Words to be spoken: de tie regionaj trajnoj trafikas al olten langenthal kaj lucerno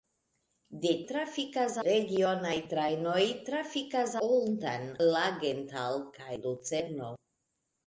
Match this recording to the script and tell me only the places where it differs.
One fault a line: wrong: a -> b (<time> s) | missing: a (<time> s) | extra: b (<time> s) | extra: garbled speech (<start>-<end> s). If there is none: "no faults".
wrong: tie -> trafikas (1.1 s)
missing: al (4.1 s)